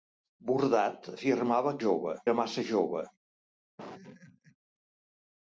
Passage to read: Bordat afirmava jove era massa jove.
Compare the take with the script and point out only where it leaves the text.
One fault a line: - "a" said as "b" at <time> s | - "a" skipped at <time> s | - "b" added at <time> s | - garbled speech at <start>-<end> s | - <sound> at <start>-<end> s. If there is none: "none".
- laugh at 3.8-4.6 s